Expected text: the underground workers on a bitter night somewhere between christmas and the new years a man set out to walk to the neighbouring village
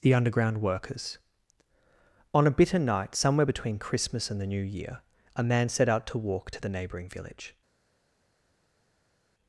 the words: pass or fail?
fail